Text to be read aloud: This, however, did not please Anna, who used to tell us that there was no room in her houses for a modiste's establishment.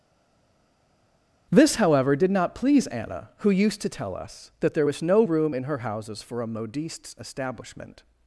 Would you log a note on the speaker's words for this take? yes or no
no